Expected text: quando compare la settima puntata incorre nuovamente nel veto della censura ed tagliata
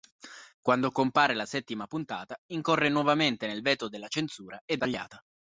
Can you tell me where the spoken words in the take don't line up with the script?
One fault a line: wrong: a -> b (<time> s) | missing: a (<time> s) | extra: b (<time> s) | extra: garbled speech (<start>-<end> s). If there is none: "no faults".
no faults